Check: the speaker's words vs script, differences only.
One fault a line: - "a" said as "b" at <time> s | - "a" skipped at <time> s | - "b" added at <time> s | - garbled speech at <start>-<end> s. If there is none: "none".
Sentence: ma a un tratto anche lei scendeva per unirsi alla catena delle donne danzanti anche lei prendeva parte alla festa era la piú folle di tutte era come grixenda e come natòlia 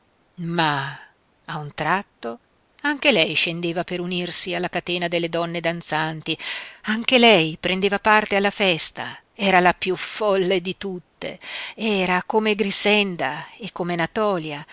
none